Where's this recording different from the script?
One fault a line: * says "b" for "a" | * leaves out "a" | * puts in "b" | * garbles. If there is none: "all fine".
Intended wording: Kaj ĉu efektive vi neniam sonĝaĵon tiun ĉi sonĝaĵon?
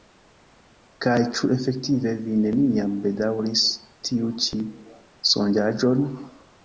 * says "bedaŭris" for "sonĝaĵon"